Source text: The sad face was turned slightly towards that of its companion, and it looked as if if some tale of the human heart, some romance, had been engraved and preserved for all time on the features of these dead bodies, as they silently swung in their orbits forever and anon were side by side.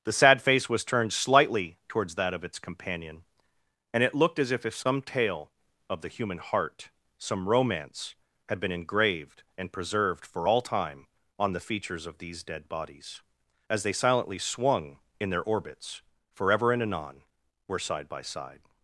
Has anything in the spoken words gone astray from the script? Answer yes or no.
no